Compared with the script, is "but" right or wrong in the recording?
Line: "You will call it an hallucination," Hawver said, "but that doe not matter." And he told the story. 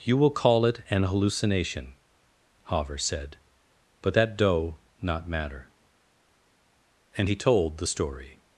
right